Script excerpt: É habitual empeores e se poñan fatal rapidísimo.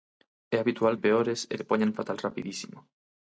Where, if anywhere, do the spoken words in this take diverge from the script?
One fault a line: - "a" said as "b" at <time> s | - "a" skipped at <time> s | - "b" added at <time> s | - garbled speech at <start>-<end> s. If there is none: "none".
none